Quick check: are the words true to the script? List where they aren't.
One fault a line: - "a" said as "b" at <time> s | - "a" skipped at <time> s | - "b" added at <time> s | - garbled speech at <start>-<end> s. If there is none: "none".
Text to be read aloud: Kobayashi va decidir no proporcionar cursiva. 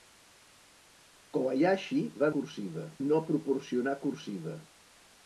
- "decidir" said as "cursiva" at 2.4 s